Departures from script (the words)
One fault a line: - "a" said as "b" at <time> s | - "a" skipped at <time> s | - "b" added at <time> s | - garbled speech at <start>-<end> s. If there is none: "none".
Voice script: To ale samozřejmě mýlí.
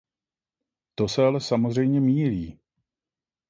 - "se" added at 1.1 s